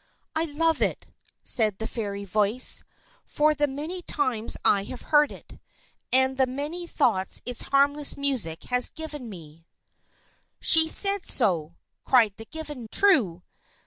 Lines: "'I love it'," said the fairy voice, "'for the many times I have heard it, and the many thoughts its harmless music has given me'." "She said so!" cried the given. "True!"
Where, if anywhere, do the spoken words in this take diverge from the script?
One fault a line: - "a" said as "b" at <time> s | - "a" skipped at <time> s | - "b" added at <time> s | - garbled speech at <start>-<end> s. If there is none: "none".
none